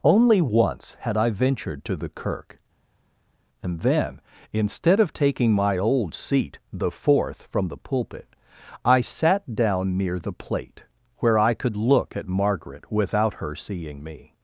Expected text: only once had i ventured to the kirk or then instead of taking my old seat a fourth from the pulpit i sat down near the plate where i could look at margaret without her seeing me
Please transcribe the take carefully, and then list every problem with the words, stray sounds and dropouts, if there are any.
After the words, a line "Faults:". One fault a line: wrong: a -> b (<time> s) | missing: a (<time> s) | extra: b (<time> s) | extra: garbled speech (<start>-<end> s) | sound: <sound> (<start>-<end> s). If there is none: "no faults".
only once had i ventured to the kirk and then instead of taking my old seat the fourth from the pulpit i sat down near the plate where i could look at margaret without her seeing me
Faults:
wrong: or -> and (3.6 s)
wrong: a -> the (6.7 s)